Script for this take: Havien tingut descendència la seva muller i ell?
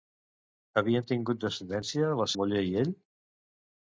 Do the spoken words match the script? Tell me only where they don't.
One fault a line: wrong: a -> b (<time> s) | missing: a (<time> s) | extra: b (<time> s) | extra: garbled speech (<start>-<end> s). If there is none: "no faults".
missing: seva (2.3 s)